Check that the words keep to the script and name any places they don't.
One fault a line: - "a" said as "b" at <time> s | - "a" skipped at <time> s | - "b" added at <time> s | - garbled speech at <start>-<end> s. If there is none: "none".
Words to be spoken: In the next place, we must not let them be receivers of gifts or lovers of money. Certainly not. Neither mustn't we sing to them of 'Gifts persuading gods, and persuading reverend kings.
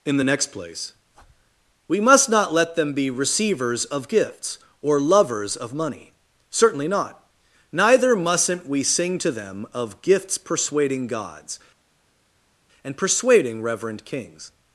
none